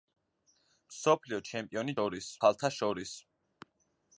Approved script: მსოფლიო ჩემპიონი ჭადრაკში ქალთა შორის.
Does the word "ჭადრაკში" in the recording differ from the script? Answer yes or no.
yes